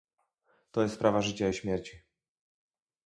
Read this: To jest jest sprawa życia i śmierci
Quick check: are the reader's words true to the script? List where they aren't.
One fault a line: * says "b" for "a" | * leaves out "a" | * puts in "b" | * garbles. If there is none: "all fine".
* leaves out "jest"